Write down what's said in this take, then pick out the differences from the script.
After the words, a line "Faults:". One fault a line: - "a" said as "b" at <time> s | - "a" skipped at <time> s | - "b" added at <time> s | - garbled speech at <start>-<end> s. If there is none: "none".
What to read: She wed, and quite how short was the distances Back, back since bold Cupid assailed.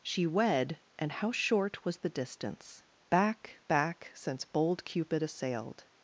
She wed, and how short was the distance Back, back since bold Cupid assailed.
Faults:
- "quite" skipped at 1.1 s
- "distances" said as "distance" at 2.1 s